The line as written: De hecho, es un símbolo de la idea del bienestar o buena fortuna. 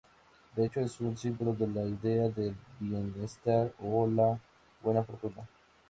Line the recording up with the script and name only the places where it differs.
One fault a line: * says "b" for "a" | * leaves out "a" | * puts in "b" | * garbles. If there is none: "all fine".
* puts in "la"